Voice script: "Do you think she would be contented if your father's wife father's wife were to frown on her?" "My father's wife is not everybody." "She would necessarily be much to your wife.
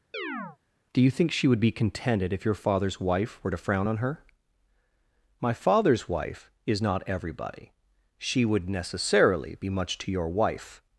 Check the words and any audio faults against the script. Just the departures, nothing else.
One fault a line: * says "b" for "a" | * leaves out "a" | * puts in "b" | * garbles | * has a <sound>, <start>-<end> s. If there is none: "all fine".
* has a chirp, 0.1-0.6 s
* leaves out "father's wife"